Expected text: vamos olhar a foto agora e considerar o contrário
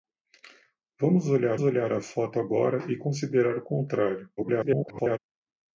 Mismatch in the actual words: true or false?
true